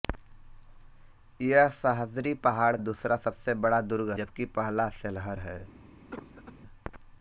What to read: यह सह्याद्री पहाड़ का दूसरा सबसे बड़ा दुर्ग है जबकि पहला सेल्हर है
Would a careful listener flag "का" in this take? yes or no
yes